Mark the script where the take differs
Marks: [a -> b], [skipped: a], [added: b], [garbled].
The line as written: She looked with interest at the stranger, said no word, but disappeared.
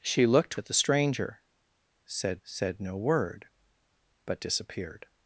She looked [skipped: with interest] at the stranger, said [added: said] no word, but disappeared.